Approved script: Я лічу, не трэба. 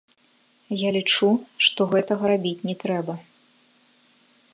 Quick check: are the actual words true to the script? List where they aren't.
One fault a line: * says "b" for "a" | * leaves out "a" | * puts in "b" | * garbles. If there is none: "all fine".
* puts in "што гэтага рабіць"